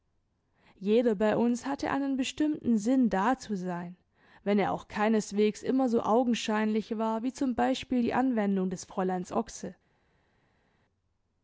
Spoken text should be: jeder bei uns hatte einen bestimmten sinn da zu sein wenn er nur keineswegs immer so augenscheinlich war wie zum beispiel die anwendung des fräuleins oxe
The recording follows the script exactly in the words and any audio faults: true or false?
false